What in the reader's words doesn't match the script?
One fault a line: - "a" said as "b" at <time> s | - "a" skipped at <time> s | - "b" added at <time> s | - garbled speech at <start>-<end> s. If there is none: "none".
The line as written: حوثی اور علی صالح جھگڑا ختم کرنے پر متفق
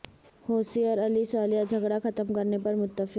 none